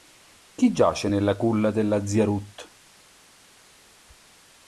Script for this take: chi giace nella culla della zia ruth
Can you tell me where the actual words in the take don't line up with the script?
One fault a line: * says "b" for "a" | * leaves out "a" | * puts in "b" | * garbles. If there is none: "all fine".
all fine